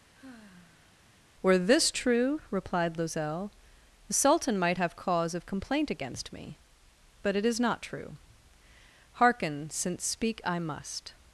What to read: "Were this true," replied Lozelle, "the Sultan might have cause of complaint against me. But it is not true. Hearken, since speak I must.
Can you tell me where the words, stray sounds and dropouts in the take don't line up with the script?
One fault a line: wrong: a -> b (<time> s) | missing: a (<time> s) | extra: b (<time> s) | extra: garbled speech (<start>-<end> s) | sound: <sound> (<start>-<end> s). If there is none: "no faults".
sound: sigh (0.1-1.1 s)